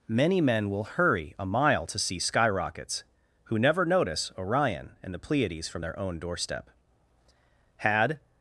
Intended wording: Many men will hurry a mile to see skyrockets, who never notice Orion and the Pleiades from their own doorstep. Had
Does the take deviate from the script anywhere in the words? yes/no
no